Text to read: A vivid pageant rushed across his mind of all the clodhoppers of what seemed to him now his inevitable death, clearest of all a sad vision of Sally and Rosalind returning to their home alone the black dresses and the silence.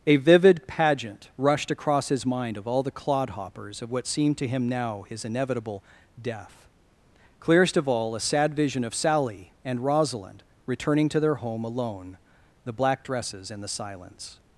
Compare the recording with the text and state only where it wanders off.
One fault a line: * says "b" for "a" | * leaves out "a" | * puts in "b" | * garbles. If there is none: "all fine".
all fine